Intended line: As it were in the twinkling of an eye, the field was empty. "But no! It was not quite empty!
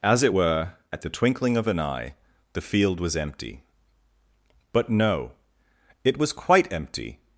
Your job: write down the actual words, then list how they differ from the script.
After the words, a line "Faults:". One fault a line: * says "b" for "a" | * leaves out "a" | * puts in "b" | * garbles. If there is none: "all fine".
As it were at the twinkling of an eye, the field was empty. "But no! It was quite empty!
Faults:
* says "at" for "in"
* leaves out "not"